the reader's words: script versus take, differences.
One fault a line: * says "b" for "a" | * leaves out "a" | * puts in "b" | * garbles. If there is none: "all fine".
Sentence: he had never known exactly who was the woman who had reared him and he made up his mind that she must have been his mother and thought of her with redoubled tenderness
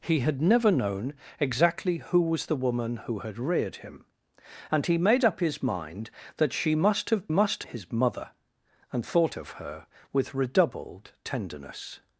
* says "must" for "been"